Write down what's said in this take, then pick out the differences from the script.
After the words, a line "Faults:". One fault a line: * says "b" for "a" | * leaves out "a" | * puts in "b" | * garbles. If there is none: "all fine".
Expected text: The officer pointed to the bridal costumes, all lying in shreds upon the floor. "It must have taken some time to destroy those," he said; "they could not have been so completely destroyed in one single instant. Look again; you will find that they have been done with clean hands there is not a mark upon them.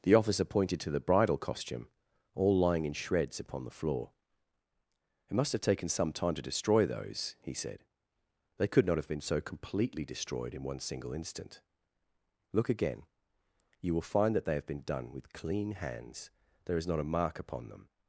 The officer pointed to the bridal costume, all lying in shreds upon the floor. "It must have taken some time to destroy those," he said; "they could not have been so completely destroyed in one single instant. Look again; you will find that they have been done with clean hands there is not a mark upon them.
Faults:
* says "costume" for "costumes"